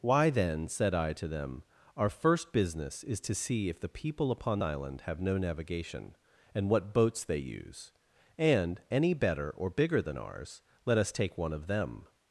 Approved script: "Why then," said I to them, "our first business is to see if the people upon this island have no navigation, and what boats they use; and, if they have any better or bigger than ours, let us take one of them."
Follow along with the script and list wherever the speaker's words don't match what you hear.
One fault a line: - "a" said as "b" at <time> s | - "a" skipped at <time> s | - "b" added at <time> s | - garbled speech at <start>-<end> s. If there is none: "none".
- "this" skipped at 4.6 s
- "if they have" skipped at 8.8 s